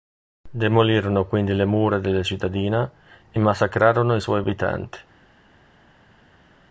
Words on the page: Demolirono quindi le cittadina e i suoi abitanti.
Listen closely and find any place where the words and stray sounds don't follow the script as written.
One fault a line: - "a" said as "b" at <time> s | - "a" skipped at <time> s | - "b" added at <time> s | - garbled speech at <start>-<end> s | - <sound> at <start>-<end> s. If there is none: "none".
- "mura della" added at 1.6 s
- "massacrarono" added at 3.4 s